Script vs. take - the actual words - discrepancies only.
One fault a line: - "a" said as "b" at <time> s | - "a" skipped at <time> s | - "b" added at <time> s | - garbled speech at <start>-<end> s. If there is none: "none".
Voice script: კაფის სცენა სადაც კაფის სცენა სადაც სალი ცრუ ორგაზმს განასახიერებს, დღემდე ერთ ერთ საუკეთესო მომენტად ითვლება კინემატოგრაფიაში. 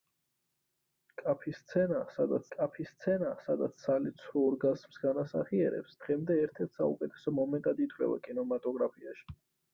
none